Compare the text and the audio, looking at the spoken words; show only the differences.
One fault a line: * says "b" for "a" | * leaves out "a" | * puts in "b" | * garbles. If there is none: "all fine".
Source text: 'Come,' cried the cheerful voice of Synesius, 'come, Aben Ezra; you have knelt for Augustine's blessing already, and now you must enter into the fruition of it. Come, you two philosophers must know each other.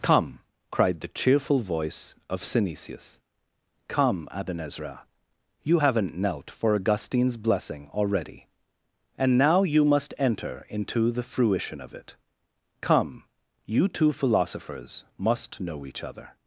* says "haven't" for "have"